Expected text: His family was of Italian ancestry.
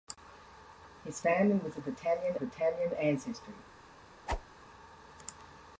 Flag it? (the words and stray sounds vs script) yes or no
yes